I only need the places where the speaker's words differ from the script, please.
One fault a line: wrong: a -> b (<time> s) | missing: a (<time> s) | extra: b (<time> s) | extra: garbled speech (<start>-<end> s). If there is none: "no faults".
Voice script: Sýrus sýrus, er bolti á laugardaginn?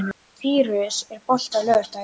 missing: sýrus (1.0 s)